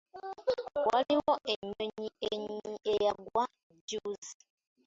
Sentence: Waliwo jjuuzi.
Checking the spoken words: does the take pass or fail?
fail